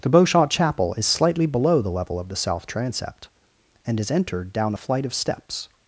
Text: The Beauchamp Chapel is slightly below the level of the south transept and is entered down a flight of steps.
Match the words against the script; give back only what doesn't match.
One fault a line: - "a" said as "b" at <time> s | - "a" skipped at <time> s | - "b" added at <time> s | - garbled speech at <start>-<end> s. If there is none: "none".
none